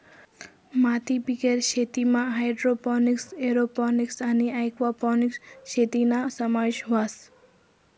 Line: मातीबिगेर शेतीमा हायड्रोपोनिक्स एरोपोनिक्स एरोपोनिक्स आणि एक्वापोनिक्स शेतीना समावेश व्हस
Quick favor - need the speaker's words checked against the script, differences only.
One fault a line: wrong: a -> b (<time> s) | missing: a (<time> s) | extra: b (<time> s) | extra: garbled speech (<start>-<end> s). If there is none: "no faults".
missing: एरोपोनिक्स (4.2 s)